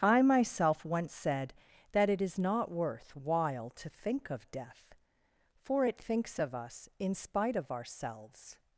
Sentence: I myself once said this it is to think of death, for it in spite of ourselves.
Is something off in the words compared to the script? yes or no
yes